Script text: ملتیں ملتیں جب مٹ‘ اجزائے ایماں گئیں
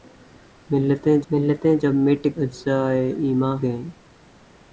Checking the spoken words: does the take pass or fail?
pass